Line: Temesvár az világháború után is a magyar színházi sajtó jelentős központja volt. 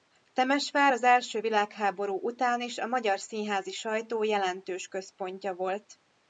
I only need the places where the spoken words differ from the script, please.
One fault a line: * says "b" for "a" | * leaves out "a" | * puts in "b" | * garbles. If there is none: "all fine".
* puts in "első"